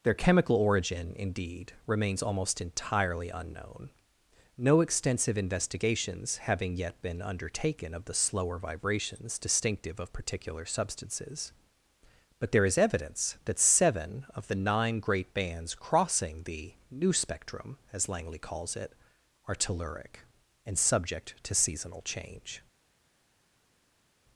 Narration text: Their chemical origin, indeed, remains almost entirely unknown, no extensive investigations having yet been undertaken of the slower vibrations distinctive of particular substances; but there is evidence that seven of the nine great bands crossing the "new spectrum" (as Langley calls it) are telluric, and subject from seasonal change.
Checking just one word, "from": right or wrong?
wrong